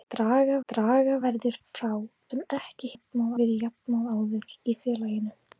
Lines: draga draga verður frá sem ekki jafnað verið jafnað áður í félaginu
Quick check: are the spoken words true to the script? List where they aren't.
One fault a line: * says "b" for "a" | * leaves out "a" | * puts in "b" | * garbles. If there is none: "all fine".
all fine